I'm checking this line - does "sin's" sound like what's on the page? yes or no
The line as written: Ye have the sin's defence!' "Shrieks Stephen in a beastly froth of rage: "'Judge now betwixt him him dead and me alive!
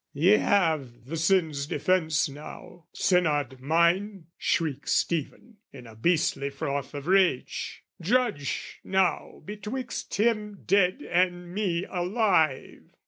yes